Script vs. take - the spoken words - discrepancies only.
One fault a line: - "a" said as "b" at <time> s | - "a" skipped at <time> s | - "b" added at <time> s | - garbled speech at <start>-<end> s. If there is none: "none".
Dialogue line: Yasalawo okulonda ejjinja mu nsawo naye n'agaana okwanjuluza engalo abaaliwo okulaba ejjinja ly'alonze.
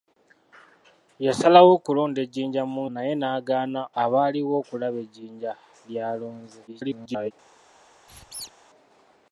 - "nsawo" skipped at 2.8 s
- "okwanjuluza engalo" skipped at 3.8 s
- garbled speech at 6.7-7.3 s